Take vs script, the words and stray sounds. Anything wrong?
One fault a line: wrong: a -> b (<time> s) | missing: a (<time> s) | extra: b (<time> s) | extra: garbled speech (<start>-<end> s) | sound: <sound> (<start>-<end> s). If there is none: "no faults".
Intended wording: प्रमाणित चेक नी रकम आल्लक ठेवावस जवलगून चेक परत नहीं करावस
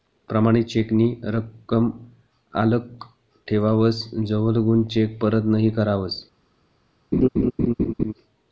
sound: laugh (7.1-8.1 s)